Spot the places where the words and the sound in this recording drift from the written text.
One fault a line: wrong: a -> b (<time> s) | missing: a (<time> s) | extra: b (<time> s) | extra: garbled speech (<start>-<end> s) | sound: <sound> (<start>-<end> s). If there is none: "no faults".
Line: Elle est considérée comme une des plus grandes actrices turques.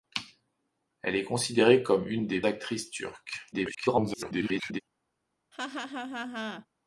missing: plus grandes (2.4 s)
extra: garbled speech (3.5-4.8 s)
sound: laugh (5.5-6.7 s)